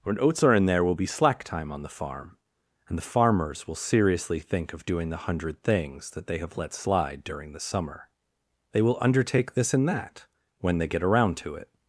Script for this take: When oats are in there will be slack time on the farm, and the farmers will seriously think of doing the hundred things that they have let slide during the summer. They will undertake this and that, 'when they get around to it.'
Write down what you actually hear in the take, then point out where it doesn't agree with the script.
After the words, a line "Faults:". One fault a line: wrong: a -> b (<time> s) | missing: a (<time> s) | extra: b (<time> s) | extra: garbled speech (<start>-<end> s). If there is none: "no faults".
When oats are in there will be slack time on the farm, and the farmers will seriously think of doing the hundred things that they have let slide during the summer. They will undertake this and that, 'when they get around to it.'
Faults:
no faults